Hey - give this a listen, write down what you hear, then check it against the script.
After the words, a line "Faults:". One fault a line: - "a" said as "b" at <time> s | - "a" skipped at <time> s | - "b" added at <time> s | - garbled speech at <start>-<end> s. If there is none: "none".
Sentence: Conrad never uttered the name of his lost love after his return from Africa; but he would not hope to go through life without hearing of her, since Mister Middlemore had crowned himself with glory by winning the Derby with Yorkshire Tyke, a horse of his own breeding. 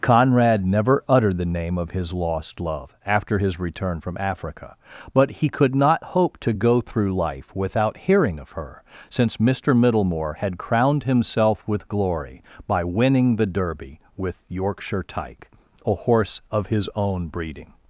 Conrad never uttered the name of his lost love after his return from Africa; but he could not hope to go through life without hearing of her, since Mister Middlemore had crowned himself with glory by winning the Derby with Yorkshire Tyke, a horse of his own breeding.
Faults:
- "would" said as "could" at 5.5 s